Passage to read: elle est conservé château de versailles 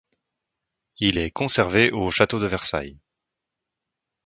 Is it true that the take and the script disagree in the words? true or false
true